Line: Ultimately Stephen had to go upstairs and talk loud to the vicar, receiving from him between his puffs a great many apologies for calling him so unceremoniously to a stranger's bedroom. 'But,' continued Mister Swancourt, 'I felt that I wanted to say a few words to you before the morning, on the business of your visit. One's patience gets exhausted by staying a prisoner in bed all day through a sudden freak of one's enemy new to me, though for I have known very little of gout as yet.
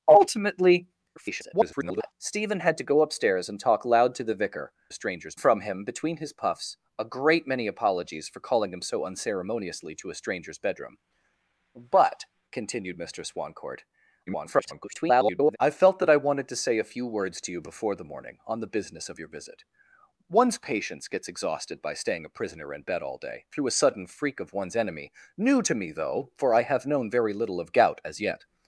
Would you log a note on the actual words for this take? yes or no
yes